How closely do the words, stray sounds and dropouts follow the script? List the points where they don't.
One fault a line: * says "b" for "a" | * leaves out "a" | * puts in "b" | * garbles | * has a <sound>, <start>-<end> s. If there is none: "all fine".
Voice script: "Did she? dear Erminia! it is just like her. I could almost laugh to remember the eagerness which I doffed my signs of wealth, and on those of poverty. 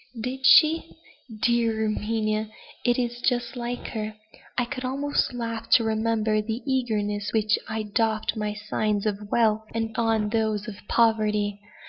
all fine